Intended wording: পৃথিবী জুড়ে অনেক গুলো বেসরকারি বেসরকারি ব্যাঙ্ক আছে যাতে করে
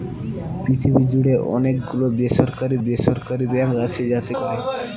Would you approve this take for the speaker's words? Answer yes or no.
yes